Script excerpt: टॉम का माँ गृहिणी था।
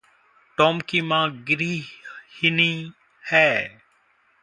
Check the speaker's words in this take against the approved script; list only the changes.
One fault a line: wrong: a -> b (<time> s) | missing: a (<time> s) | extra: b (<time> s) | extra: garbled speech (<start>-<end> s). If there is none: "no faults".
wrong: का -> की (0.8 s)
wrong: था -> है (3.2 s)